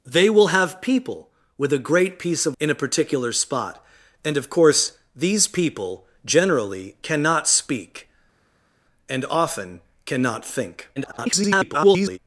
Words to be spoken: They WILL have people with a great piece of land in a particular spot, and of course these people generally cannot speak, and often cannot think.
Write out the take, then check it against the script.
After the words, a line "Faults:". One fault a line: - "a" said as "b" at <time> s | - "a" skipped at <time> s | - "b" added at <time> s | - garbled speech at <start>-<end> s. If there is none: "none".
They WILL have people with a great piece of in a particular spot, and of course these people generally cannot speak, and often cannot think. [garbled]
Faults:
- "land" skipped at 2.6 s
- garbled speech at 11.0-12.2 s